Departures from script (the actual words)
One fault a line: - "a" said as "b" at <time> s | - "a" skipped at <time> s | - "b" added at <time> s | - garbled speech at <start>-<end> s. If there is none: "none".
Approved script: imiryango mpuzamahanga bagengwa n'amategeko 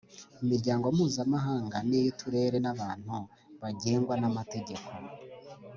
- "n'iy'uturere n'abantu" added at 1.9 s